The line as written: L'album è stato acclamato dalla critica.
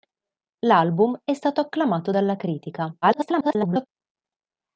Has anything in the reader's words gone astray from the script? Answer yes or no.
yes